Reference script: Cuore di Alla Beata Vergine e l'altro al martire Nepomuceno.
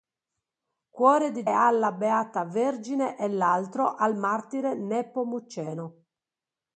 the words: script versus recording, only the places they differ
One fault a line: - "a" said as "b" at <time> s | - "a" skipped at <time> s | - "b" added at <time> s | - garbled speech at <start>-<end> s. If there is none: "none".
none